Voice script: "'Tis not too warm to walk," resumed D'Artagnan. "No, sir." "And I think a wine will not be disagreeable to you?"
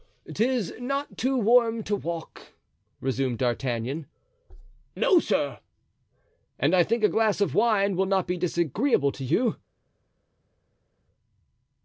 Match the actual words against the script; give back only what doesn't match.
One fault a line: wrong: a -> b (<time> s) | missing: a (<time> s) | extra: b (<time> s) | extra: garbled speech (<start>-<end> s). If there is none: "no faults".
extra: glass of (7.1 s)